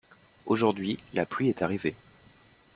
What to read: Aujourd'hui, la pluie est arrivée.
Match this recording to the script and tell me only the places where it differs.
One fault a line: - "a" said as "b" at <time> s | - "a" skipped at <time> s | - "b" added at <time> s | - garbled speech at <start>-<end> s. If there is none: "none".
none